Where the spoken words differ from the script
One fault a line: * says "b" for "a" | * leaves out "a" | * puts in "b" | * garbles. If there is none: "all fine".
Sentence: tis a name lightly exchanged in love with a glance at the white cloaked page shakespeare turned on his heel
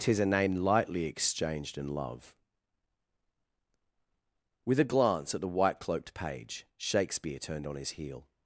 all fine